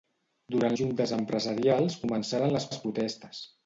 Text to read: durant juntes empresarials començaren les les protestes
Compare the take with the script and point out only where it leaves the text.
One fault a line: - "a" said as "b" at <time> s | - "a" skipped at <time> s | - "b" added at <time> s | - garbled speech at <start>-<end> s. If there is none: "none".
none